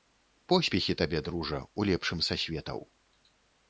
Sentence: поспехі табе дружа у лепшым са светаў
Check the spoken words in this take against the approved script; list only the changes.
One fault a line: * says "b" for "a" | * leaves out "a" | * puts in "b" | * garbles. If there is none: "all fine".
all fine